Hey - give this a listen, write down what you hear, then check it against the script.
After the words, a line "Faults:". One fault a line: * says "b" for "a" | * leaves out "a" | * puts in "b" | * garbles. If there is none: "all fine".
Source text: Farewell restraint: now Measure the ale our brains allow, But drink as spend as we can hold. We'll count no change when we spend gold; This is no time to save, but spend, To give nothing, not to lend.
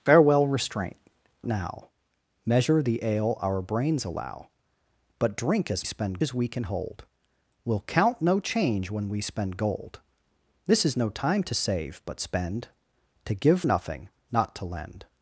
Farewell restraint: now Measure the ale our brains allow, But drink as spend as we can hold. We'll count no change when we spend gold; This is no time to save, but spend, To give nothing, not to lend.
Faults:
all fine